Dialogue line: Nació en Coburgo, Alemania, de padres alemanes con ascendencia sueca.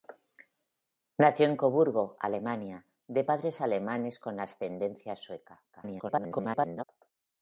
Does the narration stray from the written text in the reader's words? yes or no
yes